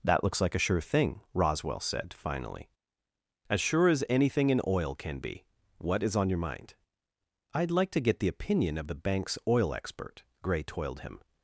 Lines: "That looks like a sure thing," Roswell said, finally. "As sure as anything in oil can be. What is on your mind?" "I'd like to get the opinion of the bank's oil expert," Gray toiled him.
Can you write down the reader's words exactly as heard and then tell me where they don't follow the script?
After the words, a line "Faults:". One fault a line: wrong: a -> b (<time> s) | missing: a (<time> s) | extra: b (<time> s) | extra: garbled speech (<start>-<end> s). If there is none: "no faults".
"That looks like a sure thing," Roswell said, finally. "As sure as anything in oil can be. What is on your mind?" "I'd like to get the opinion of the bank's oil expert," Gray toiled him.
Faults:
no faults